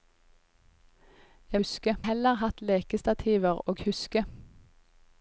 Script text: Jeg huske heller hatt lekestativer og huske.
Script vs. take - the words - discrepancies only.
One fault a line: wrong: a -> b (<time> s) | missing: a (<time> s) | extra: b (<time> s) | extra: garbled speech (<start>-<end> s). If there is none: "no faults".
no faults